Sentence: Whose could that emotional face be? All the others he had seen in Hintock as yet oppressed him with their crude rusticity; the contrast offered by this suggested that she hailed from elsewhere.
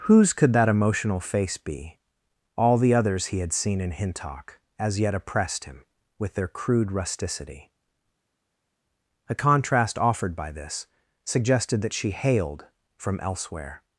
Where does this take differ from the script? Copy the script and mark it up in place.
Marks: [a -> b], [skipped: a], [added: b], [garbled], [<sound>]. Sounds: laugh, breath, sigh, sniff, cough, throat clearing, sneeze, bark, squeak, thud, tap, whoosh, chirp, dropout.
Whose could that emotional face be? All the others he had seen in Hintock as yet oppressed him with their crude rusticity; [the -> a] contrast offered by this suggested that she hailed from elsewhere.